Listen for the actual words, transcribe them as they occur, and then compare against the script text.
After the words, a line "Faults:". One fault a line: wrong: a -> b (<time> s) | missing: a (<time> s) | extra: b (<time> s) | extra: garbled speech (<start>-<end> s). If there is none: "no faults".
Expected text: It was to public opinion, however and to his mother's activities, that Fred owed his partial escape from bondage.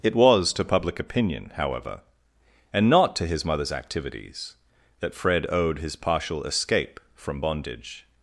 It was to public opinion, however and not to his mother's activities, that Fred owed his partial escape from bondage.
Faults:
extra: not (2.9 s)